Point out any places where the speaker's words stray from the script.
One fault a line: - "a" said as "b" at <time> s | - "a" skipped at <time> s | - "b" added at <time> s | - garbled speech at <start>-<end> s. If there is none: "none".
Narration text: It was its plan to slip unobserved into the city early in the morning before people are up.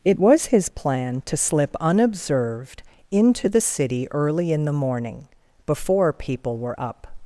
- "its" said as "his" at 0.5 s
- "are" said as "were" at 6.6 s